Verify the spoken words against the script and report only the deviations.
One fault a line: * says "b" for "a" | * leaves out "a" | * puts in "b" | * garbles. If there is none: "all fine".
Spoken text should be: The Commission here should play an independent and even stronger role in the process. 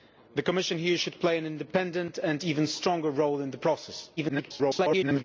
* garbles